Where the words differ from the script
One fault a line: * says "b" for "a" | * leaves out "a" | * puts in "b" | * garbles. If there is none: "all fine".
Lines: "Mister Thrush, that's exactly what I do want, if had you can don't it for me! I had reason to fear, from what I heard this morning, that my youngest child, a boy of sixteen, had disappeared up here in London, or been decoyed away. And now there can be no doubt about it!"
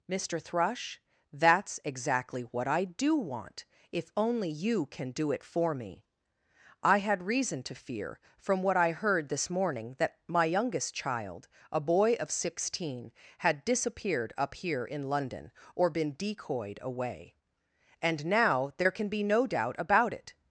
* says "only" for "had"
* says "do" for "don't"